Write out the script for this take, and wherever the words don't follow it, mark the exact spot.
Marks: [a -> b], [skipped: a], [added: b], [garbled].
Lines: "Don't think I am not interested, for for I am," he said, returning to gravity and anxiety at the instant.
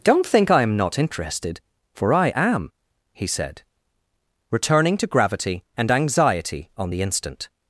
"Don't think I am not interested, for [skipped: for] I am," he said, returning to gravity and anxiety [at -> on] the instant.